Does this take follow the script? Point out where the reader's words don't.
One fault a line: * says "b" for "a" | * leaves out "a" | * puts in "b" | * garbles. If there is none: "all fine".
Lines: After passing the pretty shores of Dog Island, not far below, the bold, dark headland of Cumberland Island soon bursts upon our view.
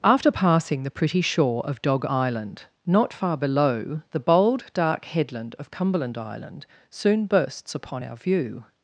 * says "shore" for "shores"